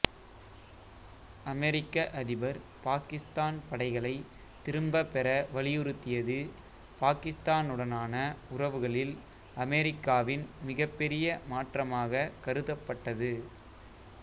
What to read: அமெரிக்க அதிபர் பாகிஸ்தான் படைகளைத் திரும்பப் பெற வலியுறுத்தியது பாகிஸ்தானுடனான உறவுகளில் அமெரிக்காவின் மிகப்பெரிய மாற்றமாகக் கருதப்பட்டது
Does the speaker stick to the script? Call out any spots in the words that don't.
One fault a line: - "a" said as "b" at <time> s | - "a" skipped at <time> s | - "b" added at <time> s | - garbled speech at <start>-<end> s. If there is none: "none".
none